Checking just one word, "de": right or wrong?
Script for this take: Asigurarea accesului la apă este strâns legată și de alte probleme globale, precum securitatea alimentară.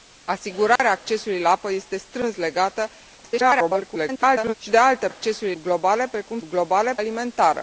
right